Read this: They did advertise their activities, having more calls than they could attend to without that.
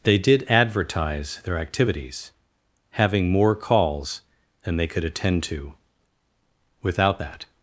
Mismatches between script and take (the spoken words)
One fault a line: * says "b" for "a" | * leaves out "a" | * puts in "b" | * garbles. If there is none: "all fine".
all fine